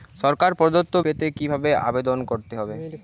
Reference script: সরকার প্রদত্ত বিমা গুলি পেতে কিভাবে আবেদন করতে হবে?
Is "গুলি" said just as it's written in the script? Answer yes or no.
no